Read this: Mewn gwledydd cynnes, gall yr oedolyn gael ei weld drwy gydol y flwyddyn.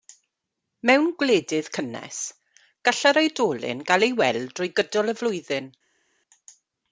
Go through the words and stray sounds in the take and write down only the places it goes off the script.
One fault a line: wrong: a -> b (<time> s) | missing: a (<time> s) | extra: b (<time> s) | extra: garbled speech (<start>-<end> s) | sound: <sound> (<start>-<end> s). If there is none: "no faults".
no faults